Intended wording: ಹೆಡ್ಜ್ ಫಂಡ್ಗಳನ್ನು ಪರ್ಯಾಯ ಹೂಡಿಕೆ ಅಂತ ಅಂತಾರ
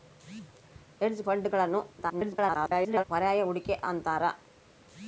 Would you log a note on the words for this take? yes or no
yes